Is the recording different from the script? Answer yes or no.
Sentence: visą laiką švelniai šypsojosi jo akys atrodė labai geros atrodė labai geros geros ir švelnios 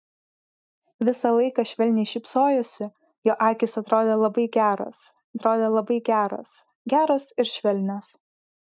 no